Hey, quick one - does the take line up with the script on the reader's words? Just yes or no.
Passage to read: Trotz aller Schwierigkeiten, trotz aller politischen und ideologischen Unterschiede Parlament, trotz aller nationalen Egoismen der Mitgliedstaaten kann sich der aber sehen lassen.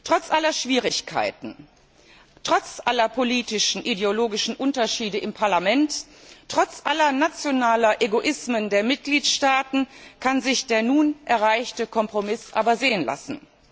no